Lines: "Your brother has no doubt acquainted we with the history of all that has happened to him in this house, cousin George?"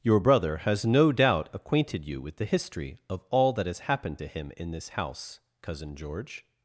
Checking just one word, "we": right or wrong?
wrong